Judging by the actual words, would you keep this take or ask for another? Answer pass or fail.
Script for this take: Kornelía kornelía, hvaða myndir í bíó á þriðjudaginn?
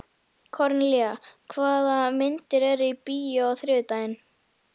fail